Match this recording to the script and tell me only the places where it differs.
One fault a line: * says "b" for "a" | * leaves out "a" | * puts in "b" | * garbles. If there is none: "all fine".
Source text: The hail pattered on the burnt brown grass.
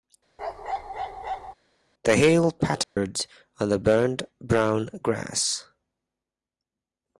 all fine